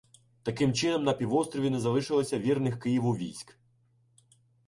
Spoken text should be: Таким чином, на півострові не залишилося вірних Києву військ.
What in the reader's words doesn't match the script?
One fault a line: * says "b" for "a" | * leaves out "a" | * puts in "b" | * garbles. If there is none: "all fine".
all fine